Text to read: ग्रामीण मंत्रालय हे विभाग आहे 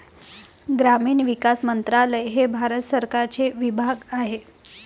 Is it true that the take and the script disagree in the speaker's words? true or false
true